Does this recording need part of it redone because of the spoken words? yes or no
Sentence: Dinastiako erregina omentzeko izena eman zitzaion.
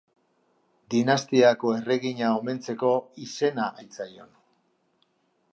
yes